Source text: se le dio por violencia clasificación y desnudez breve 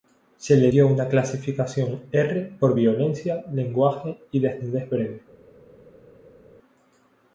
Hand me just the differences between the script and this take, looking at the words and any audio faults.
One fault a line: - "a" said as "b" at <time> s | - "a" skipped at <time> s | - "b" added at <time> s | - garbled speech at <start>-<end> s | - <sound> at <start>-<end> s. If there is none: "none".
- "una clasificación r" added at 0.9 s
- "clasificación" said as "lenguaje" at 3.5 s